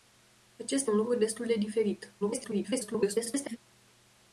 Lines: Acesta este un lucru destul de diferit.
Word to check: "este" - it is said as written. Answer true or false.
false